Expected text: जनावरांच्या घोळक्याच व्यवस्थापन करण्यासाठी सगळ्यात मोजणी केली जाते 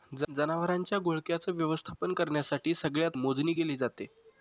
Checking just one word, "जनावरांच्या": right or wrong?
right